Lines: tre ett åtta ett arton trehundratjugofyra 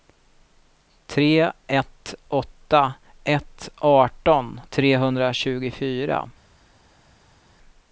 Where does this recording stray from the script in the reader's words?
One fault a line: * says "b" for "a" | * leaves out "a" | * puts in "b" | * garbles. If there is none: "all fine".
all fine